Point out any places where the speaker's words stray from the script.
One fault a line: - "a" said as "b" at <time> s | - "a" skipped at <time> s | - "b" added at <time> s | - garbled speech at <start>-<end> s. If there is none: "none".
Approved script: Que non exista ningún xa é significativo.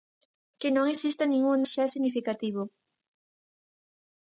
none